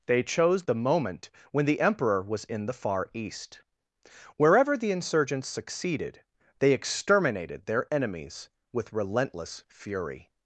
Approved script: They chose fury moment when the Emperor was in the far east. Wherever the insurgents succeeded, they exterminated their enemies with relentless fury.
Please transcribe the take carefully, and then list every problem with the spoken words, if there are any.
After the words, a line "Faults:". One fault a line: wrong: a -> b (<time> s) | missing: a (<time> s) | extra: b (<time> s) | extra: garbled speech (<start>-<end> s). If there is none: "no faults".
They chose the moment when the Emperor was in the far east. Wherever the insurgents succeeded, they exterminated their enemies with relentless fury.
Faults:
wrong: fury -> the (0.6 s)